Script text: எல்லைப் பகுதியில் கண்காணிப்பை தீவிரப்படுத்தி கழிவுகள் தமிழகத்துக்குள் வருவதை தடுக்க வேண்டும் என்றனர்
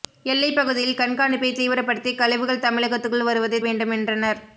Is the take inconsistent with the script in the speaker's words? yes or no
yes